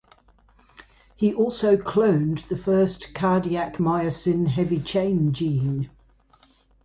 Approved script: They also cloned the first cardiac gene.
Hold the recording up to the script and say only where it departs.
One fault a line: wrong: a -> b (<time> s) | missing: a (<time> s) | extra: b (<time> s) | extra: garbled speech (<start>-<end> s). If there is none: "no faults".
wrong: They -> He (1.1 s)
extra: myosin heavy chain (3.8 s)